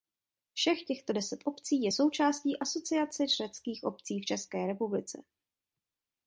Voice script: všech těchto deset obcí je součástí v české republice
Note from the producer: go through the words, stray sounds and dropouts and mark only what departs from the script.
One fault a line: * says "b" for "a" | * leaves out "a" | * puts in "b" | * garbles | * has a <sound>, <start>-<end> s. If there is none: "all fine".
* puts in "asociace řeckých obcí"